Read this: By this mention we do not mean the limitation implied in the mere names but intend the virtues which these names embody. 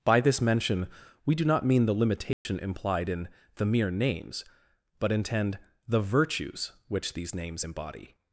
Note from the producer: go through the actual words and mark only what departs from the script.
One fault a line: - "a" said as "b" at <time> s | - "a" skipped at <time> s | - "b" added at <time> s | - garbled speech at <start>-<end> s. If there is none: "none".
none